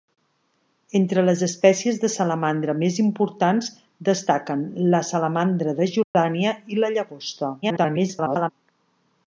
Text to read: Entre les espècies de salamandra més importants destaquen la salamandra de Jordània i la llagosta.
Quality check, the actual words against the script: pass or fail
fail